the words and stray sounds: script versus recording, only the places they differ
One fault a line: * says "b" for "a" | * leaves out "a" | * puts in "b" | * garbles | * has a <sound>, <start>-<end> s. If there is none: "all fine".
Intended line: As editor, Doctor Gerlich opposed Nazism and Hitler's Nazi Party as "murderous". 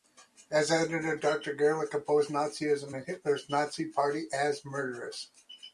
all fine